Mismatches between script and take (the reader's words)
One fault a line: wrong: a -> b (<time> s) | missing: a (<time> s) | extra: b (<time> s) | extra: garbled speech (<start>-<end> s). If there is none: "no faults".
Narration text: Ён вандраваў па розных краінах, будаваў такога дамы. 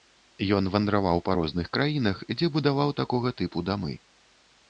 extra: дзе (2.4 s)
extra: тыпу (3.4 s)